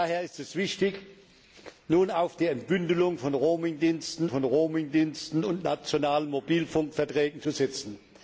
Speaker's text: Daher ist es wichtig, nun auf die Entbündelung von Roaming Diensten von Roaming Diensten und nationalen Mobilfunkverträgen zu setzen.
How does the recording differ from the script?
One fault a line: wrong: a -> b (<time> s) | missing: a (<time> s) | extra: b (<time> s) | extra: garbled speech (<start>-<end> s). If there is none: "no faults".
no faults